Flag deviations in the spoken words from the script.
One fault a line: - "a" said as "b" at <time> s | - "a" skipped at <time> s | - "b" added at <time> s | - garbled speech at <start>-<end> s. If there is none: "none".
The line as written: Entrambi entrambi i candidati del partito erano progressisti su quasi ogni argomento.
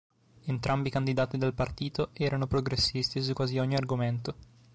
- "entrambi" skipped at 0.9 s